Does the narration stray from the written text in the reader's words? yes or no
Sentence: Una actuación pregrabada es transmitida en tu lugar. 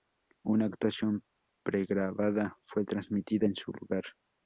yes